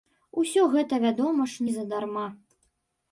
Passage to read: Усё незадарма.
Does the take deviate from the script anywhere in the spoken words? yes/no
yes